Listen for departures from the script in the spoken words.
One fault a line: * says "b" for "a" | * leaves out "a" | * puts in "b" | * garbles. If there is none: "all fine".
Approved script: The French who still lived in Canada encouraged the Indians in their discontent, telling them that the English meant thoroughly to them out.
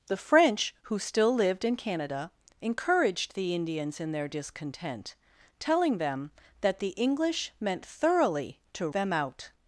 all fine